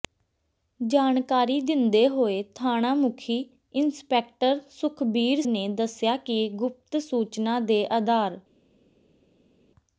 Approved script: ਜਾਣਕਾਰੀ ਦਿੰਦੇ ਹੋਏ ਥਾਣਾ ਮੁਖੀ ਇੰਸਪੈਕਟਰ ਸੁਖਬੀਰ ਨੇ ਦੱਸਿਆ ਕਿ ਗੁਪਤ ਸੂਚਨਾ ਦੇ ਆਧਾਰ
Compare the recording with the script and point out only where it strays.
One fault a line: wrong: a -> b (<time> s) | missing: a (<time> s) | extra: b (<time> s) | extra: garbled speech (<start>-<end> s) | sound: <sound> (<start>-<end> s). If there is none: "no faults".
no faults